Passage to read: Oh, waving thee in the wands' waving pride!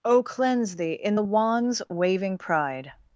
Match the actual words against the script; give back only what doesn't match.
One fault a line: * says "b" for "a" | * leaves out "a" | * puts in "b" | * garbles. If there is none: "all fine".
* says "cleanse" for "waving"